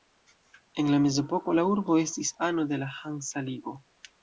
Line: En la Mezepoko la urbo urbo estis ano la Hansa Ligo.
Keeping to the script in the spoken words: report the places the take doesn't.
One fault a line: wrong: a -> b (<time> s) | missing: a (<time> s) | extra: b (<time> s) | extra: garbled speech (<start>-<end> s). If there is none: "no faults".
missing: urbo (2.0 s)
extra: de (2.7 s)